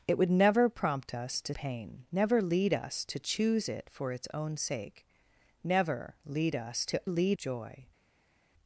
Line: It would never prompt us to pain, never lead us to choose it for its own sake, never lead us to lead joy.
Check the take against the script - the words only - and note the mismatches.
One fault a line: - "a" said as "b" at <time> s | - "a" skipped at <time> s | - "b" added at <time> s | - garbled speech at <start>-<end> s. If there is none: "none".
none